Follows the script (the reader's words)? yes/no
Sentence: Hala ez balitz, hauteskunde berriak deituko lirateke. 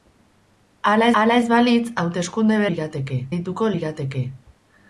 no